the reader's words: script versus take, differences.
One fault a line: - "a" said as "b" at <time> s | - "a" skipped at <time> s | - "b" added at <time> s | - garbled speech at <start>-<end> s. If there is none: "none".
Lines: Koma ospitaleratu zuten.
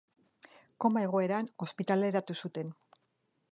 - "egoeran" added at 1.1 s